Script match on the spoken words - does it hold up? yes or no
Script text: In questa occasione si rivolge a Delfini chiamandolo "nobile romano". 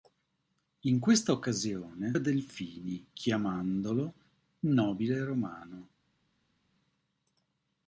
no